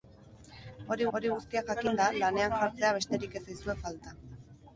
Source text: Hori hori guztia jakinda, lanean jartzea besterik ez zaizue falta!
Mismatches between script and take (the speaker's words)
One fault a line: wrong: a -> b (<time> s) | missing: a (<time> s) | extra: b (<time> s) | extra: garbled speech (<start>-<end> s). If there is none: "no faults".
no faults